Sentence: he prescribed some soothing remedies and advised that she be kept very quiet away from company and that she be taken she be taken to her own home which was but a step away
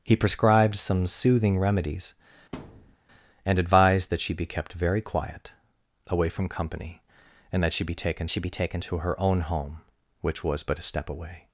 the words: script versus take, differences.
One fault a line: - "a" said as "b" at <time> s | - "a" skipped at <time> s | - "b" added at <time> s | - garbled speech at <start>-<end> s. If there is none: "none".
none